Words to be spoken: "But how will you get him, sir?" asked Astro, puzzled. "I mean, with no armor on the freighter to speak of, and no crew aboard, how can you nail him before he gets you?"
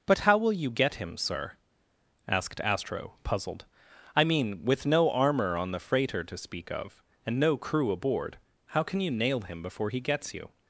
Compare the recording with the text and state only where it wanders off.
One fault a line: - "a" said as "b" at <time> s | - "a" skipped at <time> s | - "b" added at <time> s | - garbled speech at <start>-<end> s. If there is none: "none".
none